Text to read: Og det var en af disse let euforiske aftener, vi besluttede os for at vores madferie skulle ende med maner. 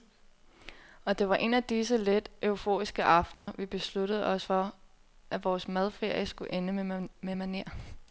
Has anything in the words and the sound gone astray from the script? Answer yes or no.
yes